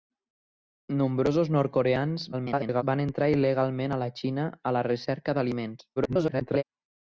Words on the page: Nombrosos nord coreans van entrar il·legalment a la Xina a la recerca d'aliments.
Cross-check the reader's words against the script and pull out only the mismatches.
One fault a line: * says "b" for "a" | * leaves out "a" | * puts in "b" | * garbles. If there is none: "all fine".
* garbles
* garbles